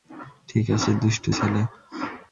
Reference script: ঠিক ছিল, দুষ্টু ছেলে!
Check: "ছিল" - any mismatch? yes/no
yes